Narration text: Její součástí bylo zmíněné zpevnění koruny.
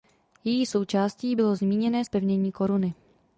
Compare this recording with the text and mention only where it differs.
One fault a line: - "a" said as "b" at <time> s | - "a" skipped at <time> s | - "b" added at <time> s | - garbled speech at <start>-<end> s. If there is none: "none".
none